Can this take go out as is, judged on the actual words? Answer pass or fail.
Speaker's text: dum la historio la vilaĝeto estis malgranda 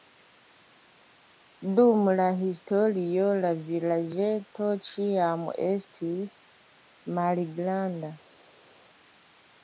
fail